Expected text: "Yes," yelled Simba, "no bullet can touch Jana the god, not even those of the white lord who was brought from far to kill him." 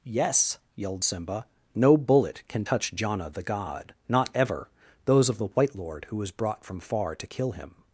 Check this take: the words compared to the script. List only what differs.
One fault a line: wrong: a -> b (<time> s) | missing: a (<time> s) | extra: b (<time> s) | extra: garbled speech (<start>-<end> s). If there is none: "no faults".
wrong: even -> ever (4.3 s)